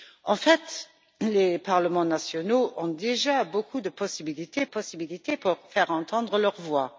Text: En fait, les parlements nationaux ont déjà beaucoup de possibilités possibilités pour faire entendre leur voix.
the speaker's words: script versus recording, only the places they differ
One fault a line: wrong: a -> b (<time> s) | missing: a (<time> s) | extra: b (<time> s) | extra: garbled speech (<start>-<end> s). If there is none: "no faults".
no faults